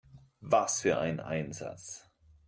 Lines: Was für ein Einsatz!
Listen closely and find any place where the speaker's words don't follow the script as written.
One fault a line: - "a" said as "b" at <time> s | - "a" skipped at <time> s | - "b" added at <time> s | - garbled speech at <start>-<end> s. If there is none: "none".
none